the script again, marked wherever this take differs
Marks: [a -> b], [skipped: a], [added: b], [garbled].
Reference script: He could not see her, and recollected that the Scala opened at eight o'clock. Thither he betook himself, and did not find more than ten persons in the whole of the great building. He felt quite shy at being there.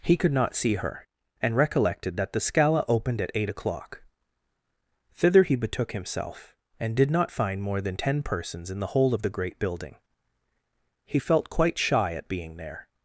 He could not see her, and recollected that the Scala opened at eight o'clock. Thither he betook himself, and did not find more than ten persons in the whole of the great building. He felt quite shy at being there.